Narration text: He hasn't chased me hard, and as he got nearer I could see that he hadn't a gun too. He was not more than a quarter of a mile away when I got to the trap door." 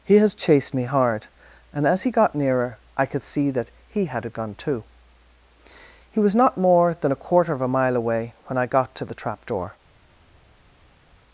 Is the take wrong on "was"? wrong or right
right